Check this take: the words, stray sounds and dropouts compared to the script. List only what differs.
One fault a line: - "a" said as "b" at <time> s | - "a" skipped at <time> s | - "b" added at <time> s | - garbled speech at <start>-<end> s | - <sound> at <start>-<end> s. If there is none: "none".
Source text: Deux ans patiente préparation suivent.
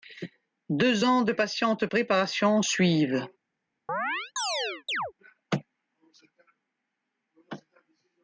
- "de" added at 1.2 s
- chirp at 3.9-5.1 s